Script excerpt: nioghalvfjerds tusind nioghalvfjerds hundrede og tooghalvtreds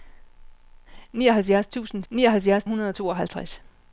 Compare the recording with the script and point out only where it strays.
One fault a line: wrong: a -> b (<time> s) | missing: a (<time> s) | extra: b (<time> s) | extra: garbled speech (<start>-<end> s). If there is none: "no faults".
no faults